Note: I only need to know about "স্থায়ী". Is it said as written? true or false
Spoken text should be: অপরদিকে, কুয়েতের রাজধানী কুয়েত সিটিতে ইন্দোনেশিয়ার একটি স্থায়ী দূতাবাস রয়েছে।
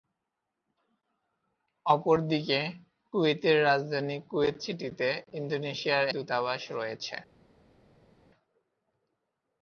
false